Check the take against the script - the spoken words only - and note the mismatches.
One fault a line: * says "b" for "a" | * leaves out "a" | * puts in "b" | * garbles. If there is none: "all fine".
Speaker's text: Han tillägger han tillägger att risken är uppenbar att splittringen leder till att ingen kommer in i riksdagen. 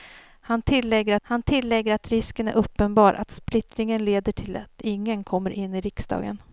all fine